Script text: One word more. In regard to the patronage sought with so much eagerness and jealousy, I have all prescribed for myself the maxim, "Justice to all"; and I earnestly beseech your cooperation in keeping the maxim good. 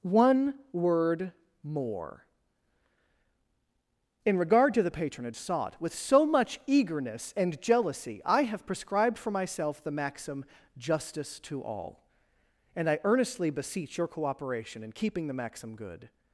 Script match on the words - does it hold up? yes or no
no